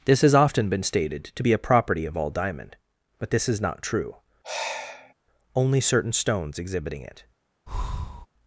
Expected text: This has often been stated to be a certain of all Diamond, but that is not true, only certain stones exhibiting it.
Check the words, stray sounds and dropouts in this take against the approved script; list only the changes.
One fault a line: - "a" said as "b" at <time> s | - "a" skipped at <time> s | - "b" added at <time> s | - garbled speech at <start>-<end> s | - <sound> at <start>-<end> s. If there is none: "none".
- "certain" said as "property" at 1.6 s
- "that" said as "this" at 3.3 s
- sigh at 4.4-5.1 s
- breath at 7.7-8.3 s